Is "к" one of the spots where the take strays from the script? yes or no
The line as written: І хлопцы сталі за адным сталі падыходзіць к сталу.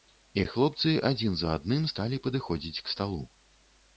no